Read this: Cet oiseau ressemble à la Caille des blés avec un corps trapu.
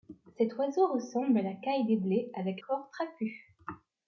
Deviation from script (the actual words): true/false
true